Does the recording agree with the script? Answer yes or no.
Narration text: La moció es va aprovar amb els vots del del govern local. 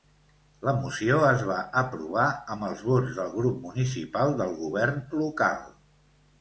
no